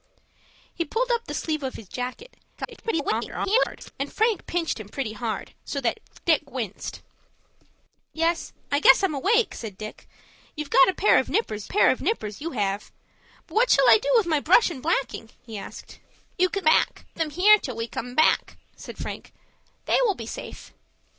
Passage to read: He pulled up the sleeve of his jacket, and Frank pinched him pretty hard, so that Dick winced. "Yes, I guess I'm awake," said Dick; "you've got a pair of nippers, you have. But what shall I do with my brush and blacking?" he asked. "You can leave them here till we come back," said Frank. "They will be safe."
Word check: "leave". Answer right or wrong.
wrong